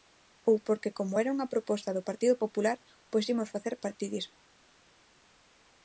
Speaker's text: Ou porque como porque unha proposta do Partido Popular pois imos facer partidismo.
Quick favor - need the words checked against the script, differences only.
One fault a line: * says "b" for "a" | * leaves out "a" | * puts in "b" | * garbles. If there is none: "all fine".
* says "era" for "porque"